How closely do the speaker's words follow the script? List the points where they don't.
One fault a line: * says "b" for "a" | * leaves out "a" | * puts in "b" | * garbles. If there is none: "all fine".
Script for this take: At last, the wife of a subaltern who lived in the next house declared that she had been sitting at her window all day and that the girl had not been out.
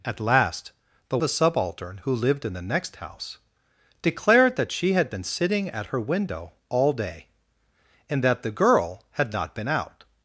* leaves out "wife of"